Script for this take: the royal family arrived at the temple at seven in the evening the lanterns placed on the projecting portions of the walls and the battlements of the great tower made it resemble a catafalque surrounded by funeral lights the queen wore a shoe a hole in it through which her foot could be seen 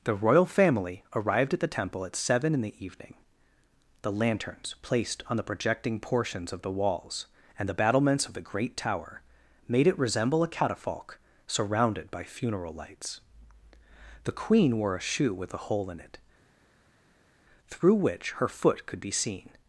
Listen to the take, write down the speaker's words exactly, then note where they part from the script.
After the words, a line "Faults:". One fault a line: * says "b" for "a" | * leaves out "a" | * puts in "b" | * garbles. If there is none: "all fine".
the royal family arrived at the temple at seven in the evening the lanterns placed on the projecting portions of the walls and the battlements of the great tower made it resemble a catafalque surrounded by funeral lights the queen wore a shoe with a hole in it through which her foot could be seen
Faults:
* puts in "with"